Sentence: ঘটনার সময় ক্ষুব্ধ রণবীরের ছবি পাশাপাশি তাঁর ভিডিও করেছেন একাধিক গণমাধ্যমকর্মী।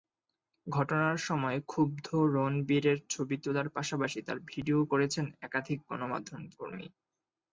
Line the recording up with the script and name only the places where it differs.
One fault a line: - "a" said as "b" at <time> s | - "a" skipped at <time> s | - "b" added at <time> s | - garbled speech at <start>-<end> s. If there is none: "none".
- "তোলার" added at 3.4 s